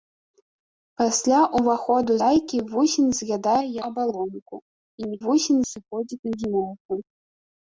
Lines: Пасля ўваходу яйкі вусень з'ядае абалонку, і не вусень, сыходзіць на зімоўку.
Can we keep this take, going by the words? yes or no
yes